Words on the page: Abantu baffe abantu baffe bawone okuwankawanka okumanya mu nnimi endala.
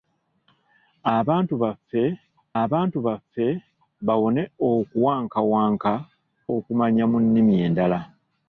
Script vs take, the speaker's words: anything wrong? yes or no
no